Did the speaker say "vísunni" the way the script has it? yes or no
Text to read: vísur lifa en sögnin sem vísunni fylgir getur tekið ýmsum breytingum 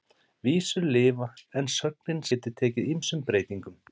no